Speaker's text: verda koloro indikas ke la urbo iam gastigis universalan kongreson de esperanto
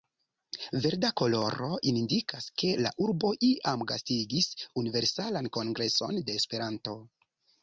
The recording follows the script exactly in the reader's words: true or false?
true